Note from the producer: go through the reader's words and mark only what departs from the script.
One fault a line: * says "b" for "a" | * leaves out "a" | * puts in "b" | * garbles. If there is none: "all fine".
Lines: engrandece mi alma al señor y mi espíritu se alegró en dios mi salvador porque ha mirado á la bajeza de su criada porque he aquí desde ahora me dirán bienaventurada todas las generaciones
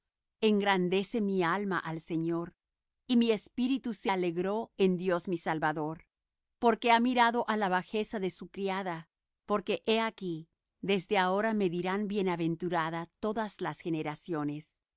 all fine